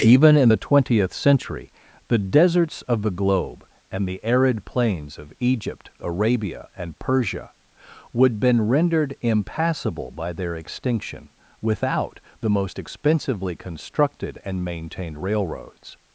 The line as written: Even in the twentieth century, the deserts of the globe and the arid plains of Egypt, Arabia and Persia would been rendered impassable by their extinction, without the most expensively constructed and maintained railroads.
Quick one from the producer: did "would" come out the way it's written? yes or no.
yes